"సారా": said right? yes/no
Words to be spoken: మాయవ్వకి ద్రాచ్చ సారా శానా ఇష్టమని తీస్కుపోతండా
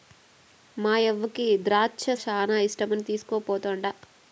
no